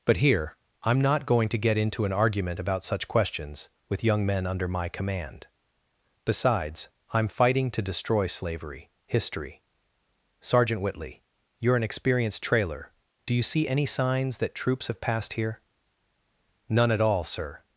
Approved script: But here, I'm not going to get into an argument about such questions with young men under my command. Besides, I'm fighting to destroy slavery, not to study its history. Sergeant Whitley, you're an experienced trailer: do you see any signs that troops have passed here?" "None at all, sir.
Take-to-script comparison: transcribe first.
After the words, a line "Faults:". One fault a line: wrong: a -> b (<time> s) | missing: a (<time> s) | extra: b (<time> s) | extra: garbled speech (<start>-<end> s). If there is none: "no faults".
But here, I'm not going to get into an argument about such questions with young men under my command. Besides, I'm fighting to destroy slavery, history. Sergeant Whitley, you're an experienced trailer: do you see any signs that troops have passed here?" "None at all, sir.
Faults:
missing: not to study its (8.9 s)